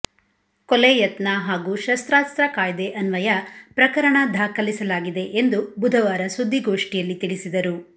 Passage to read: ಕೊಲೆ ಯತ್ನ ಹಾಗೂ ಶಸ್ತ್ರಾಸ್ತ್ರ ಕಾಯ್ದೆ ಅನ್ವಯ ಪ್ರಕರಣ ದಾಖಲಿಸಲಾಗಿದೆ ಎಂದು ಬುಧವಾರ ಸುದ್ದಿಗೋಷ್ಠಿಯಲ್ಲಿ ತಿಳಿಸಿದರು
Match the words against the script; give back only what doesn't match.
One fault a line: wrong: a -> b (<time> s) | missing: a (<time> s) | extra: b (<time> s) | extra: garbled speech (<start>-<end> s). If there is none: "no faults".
no faults